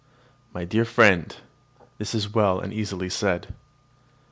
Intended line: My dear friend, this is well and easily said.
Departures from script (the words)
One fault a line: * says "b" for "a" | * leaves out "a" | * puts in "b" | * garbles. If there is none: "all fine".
all fine